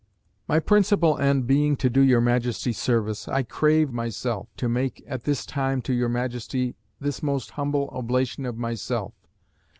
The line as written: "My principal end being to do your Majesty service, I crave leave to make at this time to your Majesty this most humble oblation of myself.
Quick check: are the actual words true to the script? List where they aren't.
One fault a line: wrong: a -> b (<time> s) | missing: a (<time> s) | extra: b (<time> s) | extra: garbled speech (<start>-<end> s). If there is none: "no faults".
wrong: leave -> myself (3.9 s)